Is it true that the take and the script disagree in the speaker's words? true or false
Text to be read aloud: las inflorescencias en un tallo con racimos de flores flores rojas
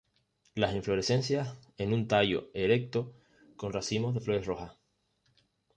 true